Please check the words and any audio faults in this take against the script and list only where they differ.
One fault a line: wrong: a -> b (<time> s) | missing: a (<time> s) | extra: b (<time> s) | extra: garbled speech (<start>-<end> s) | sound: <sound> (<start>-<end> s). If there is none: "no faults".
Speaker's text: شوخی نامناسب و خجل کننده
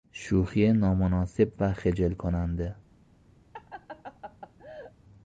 sound: laugh (3.5-4.9 s)